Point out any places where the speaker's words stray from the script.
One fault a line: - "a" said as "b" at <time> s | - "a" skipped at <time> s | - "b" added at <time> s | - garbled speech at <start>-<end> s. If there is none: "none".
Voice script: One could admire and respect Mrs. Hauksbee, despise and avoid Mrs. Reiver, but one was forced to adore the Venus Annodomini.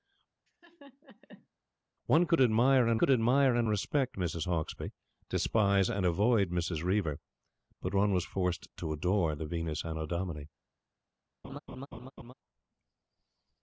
- "could admire and" added at 3.0 s